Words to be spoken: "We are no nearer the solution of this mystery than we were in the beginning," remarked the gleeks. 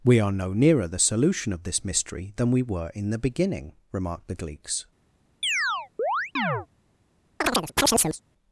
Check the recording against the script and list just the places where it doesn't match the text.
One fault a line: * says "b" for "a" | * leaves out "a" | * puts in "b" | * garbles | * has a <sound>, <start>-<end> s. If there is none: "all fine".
* has a chirp, 5.4-6.7 s
* has a chirp, 7.4-8.2 s